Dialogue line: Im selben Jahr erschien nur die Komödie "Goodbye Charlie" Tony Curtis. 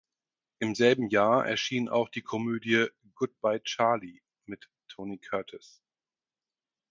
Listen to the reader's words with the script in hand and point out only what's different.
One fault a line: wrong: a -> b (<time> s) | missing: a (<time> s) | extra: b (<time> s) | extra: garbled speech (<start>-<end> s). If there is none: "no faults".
wrong: nur -> auch (1.9 s)
extra: mit (4.4 s)